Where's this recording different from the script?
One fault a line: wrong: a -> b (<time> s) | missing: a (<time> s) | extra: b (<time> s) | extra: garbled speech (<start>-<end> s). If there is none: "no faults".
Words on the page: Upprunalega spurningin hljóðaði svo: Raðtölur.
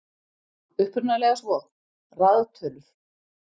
missing: spurningin hljóðaði (1.4 s)